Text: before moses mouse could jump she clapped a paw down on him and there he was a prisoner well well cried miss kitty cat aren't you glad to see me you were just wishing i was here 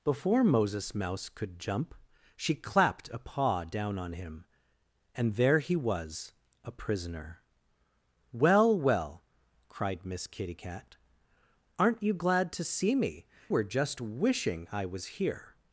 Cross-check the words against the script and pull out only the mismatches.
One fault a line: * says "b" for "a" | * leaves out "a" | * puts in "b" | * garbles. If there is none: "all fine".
* leaves out "you"